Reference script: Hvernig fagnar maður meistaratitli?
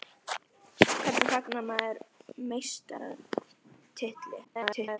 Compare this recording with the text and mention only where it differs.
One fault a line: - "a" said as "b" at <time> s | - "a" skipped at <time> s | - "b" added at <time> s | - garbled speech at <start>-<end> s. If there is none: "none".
- garbled speech at 4.4-5.0 s